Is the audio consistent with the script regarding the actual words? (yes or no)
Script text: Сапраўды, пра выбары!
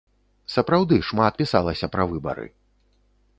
no